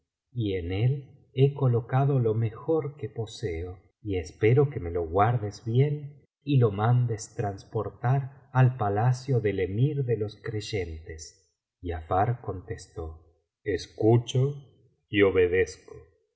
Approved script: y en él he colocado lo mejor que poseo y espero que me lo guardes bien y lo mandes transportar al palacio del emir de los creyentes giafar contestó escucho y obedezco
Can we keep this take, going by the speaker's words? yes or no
yes